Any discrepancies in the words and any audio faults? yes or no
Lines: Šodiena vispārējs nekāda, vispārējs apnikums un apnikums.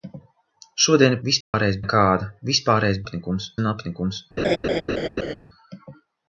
yes